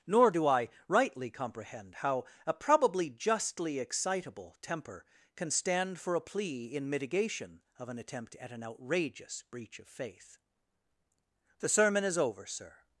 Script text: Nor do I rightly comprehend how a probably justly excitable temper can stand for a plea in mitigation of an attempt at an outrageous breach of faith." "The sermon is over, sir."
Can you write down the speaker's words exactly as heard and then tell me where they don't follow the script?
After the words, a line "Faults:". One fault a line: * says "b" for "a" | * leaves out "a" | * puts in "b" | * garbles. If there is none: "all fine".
Nor do I rightly comprehend how a probably justly excitable temper can stand for a plea in mitigation of an attempt at an outrageous breach of faith." "The sermon is over, sir."
Faults:
all fine